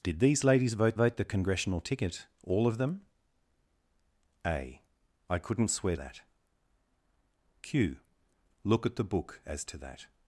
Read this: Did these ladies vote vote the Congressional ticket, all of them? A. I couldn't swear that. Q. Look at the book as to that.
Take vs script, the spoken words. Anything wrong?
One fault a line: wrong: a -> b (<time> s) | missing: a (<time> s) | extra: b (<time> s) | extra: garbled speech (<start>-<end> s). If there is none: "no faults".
no faults